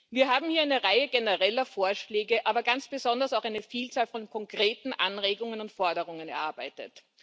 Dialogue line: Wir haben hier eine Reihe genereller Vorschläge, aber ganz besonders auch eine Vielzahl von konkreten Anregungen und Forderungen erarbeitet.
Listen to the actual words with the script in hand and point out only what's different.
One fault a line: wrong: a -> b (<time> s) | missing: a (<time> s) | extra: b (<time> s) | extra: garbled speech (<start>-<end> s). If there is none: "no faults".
no faults